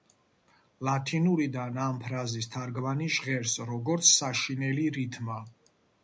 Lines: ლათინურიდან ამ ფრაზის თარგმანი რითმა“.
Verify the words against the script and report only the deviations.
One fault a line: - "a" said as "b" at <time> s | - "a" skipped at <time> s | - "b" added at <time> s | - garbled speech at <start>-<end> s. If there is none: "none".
- "ჟღერს როგორც საშინელი" added at 3.2 s